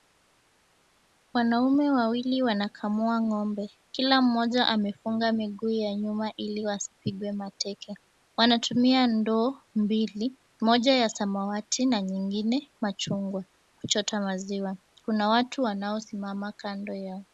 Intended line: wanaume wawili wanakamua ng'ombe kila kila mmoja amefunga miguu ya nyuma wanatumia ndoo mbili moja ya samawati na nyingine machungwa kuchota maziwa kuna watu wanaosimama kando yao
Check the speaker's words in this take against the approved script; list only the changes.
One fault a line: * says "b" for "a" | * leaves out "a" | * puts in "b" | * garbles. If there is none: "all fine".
* leaves out "kila"
* puts in "ili wasipigwe mateke"